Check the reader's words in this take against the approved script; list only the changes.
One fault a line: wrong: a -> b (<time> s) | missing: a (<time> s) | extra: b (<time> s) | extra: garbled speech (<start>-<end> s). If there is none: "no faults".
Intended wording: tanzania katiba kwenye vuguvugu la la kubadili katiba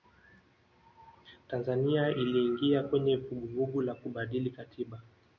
wrong: katiba -> iliingia (2.1 s)
missing: la (3.9 s)